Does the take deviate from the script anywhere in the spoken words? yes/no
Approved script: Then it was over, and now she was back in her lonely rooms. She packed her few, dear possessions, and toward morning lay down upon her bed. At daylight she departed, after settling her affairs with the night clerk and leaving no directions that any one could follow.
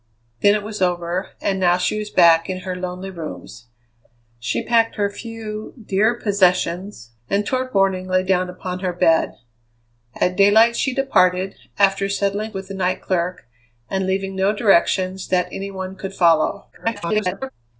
yes